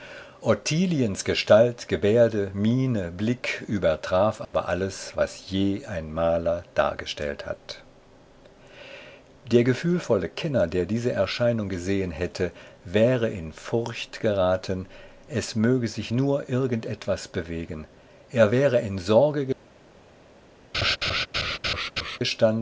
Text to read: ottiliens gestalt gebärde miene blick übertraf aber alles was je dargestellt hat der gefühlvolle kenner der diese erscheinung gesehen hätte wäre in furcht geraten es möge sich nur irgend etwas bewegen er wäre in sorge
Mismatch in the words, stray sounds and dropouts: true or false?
true